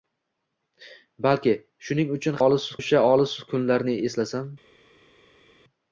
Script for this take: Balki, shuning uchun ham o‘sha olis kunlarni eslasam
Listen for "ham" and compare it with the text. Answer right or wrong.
wrong